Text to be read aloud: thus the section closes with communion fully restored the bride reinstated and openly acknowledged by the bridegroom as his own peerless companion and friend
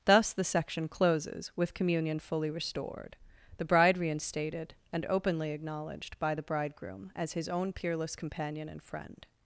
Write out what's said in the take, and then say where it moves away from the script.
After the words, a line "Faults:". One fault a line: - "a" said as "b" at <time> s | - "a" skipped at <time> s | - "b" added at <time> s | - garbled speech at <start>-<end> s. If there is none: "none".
thus the section closes with communion fully restored the bride reinstated and openly acknowledged by the bridegroom as his own peerless companion and friend
Faults:
none